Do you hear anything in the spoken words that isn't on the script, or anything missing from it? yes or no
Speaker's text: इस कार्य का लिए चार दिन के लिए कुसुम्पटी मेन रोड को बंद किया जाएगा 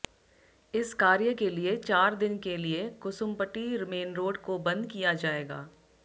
yes